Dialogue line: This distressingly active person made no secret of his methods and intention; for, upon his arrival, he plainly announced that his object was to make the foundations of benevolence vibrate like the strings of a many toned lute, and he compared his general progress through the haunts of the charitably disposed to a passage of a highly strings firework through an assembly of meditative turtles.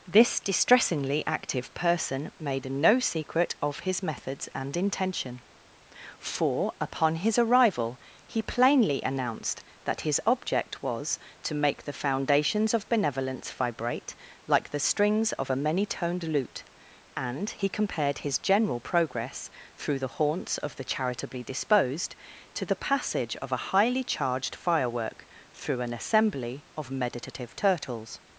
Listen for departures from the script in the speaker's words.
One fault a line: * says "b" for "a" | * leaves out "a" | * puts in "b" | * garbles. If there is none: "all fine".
* says "the" for "a"
* says "charged" for "strings"